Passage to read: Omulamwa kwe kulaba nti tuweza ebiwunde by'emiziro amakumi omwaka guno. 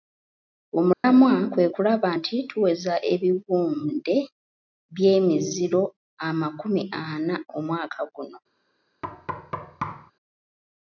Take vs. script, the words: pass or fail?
fail